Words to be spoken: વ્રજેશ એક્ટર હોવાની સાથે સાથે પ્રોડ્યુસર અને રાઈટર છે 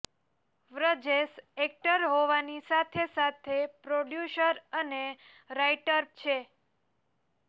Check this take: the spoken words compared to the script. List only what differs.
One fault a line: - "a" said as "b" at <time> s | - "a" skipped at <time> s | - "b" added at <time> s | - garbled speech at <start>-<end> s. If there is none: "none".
none